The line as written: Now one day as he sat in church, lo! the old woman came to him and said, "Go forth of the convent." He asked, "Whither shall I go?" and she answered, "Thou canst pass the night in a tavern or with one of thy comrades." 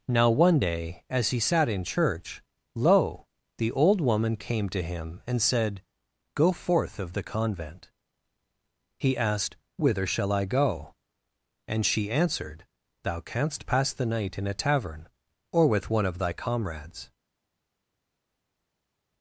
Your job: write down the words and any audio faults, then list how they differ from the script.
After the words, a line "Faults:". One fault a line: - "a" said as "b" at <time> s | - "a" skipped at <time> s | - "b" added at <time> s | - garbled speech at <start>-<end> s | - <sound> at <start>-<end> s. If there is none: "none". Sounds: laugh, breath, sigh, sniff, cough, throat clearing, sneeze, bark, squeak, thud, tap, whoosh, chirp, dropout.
Now one day as he sat in church, lo! the old woman came to him and said, "Go forth of the convent." He asked, "Whither shall I go?" and she answered, "Thou canst pass the night in a tavern or with one of thy comrades."
Faults:
none